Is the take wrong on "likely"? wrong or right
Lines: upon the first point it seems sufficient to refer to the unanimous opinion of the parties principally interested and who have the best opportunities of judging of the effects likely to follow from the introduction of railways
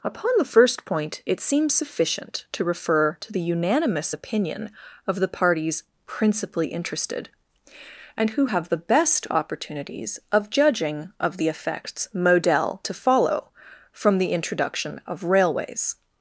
wrong